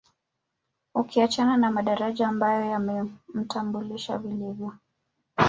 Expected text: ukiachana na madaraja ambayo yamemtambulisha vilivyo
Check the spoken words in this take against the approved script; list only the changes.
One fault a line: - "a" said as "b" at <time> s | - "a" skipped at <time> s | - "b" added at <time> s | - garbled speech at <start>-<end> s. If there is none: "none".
none